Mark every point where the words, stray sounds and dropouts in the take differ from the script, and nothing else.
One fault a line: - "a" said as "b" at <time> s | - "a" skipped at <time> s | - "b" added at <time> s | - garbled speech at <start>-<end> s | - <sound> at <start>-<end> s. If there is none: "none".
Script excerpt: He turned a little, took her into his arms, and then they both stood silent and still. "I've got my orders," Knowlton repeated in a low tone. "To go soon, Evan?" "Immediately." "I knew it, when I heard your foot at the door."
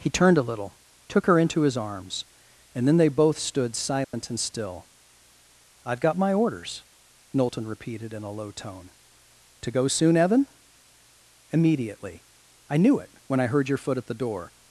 - dropout at 4.0-4.1 s